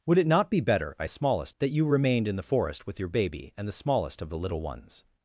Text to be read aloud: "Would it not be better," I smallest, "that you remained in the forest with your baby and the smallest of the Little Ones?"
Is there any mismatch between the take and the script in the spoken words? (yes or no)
no